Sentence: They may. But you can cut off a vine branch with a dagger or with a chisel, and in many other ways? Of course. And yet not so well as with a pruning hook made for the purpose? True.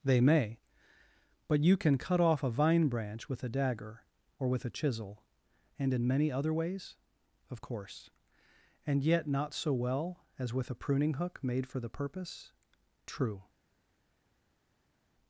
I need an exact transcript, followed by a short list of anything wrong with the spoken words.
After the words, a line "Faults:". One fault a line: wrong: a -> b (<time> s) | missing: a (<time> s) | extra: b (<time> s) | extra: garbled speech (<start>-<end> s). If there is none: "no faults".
They may. But you can cut off a vine branch with a dagger or with a chisel, and in many other ways? Of course. And yet not so well as with a pruning hook made for the purpose? True.
Faults:
no faults